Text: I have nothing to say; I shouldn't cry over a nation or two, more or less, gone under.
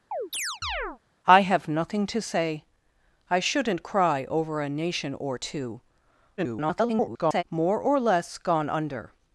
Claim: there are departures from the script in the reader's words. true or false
true